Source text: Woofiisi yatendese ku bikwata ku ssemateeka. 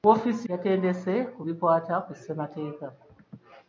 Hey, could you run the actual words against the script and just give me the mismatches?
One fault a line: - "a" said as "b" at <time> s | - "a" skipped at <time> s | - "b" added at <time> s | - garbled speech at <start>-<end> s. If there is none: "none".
none